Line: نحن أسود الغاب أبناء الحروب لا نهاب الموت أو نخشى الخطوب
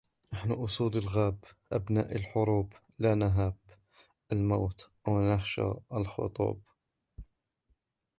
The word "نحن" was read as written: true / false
true